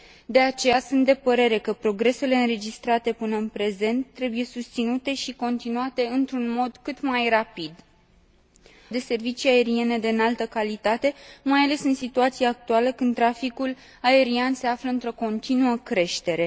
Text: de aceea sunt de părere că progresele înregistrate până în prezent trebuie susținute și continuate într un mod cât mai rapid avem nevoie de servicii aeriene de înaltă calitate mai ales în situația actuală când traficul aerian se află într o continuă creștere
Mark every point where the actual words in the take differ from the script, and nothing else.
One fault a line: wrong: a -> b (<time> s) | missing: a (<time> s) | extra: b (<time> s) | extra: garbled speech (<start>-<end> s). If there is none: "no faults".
missing: avem nevoie (7.7 s)